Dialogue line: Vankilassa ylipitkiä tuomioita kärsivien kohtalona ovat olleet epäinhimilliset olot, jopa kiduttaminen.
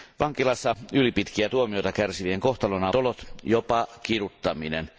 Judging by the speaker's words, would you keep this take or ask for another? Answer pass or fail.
fail